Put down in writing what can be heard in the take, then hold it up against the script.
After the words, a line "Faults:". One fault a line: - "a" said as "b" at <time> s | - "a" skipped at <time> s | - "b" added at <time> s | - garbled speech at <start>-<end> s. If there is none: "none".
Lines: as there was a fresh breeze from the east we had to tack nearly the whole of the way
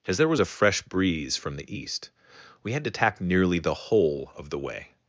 as there was a fresh breeze from the east we had to tack nearly the whole of the way
Faults:
none